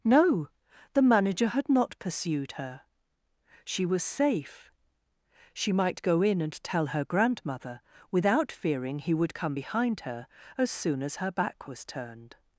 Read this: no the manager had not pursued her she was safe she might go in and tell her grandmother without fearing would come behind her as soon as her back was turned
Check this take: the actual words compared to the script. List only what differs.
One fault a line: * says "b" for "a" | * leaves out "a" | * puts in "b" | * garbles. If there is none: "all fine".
* puts in "he"